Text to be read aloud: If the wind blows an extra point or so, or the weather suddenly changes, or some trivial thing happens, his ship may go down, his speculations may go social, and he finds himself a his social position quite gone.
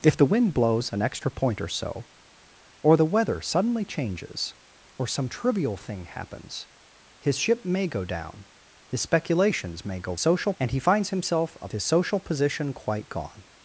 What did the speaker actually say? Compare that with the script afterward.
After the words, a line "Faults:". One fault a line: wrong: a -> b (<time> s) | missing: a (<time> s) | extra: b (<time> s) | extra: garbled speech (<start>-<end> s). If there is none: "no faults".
If the wind blows an extra point or so, or the weather suddenly changes, or some trivial thing happens, his ship may go down, his speculations may go social, and he finds himself a his social position quite gone.
Faults:
no faults